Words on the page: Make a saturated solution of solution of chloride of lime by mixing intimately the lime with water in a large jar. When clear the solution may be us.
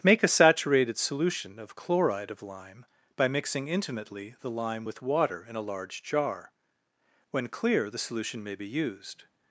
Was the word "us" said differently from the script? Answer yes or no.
yes